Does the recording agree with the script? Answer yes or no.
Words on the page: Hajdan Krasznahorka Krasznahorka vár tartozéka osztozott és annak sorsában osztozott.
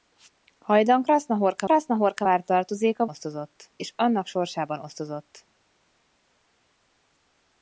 yes